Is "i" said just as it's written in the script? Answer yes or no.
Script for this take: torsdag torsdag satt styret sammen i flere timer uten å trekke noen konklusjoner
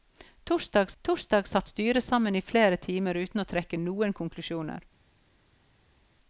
yes